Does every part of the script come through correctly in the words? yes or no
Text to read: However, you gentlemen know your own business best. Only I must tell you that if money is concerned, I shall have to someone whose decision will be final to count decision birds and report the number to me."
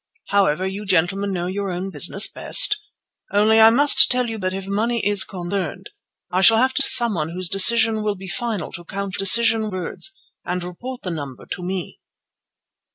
yes